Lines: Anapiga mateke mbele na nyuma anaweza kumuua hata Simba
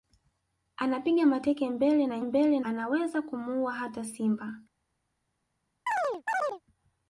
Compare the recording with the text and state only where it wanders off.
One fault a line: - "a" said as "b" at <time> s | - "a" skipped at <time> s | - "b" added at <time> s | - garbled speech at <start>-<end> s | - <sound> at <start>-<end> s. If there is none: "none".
- "nyuma" said as "mbele" at 2.2 s
- chirp at 5.9-6.6 s